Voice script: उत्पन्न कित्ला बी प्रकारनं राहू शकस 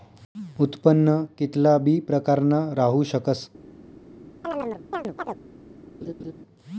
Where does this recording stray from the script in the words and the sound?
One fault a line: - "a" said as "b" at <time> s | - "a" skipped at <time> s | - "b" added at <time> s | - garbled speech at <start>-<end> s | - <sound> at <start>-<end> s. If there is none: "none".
- chirp at 4.4-5.4 s
- laugh at 6.0-6.3 s